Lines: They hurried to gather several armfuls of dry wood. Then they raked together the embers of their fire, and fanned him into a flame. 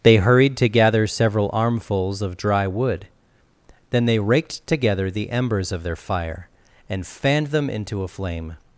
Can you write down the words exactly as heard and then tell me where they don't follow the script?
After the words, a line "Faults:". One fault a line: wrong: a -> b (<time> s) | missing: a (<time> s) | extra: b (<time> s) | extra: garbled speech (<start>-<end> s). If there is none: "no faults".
They hurried to gather several armfuls of dry wood. Then they raked together the embers of their fire, and fanned them into a flame.
Faults:
wrong: him -> them (7.5 s)